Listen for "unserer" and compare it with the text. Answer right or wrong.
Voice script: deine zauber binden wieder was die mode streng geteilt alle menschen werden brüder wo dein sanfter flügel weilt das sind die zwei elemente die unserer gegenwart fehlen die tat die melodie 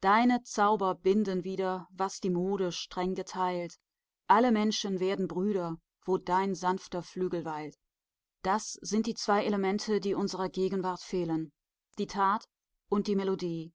right